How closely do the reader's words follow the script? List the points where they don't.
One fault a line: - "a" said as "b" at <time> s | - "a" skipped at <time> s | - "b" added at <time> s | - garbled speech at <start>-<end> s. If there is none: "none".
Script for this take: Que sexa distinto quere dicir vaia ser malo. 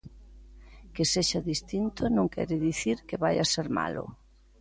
- "non" added at 2.1 s
- "que" added at 3.1 s